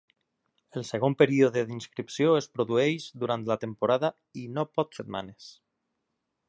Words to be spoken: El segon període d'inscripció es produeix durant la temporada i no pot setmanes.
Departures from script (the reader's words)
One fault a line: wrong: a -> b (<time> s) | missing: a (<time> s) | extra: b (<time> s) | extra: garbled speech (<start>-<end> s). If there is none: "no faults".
no faults